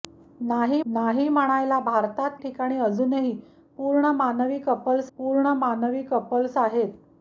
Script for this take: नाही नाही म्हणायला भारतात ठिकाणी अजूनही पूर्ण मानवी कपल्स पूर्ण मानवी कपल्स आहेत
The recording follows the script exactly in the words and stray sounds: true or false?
true